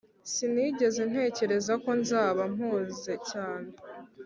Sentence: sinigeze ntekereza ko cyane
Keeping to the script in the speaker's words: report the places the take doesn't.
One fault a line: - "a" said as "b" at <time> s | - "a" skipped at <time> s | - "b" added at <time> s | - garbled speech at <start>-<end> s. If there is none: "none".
- "nzaba mpuze" added at 2.0 s